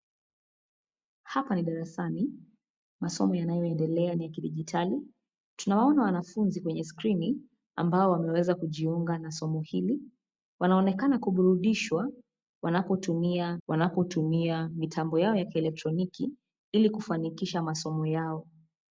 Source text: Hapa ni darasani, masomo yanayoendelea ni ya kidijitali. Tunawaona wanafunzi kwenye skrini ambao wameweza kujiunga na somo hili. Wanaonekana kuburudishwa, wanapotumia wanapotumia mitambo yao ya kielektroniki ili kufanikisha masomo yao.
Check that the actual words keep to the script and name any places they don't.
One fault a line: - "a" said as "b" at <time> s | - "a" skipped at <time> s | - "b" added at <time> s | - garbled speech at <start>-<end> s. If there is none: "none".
none